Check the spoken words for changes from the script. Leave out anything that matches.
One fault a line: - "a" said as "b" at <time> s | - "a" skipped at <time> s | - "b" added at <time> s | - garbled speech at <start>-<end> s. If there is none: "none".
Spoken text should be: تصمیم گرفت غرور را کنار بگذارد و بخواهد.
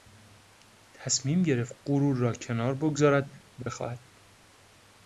none